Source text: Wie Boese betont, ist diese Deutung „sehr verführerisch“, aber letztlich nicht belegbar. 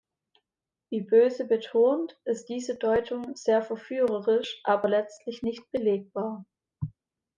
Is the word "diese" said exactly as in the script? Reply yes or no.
yes